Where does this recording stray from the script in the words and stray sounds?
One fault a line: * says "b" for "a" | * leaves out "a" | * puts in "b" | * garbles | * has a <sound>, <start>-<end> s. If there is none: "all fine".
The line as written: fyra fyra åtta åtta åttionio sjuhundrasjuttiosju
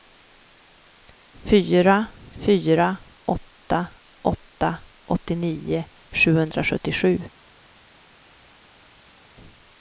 all fine